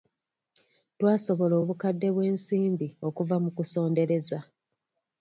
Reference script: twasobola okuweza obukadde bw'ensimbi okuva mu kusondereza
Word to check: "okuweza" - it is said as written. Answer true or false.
false